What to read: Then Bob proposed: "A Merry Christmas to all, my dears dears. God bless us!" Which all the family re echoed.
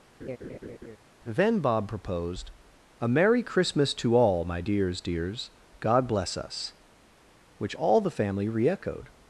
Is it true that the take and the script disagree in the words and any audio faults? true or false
true